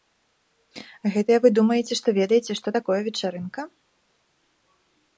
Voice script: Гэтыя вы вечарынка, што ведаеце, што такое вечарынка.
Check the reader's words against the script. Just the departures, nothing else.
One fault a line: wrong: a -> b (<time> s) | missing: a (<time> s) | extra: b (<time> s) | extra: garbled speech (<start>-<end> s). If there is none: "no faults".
wrong: вечарынка -> думаеце (1.6 s)